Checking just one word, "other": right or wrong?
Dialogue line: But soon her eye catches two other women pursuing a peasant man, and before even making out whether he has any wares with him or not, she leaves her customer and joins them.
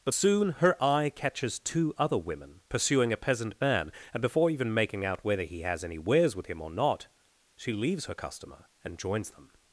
right